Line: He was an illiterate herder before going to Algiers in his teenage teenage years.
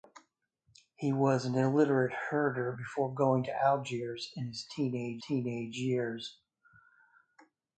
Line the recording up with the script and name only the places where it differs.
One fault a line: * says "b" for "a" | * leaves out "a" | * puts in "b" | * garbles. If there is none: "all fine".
all fine